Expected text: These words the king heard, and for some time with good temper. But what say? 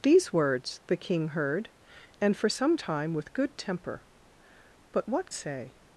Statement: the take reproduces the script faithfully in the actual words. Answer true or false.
true